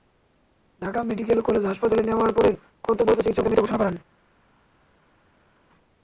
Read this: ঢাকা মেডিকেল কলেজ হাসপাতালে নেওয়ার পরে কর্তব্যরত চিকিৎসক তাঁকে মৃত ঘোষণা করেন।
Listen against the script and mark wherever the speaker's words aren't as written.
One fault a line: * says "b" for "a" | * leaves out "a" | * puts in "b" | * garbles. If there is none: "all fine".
all fine